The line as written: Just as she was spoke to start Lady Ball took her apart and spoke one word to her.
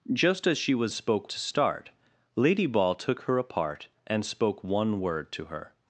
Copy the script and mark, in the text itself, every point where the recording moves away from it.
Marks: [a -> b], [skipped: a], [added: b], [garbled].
Just as she was spoke to start Lady Ball took her apart and spoke one word to her.